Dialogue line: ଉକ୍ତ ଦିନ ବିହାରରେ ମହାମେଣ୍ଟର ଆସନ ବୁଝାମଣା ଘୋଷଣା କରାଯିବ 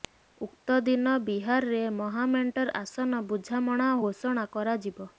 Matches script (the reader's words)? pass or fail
pass